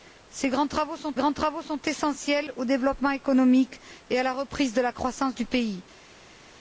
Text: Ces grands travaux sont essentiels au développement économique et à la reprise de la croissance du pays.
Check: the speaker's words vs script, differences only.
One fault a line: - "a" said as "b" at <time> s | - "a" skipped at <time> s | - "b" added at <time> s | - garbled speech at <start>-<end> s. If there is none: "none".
- "grands travaux sont" added at 1.1 s